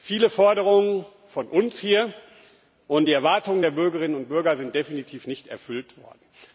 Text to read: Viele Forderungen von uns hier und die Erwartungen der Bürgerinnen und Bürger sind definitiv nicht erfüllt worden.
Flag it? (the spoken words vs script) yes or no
no